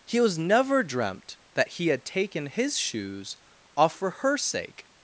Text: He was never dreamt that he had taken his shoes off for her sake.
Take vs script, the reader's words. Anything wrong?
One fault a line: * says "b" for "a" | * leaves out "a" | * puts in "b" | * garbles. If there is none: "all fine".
all fine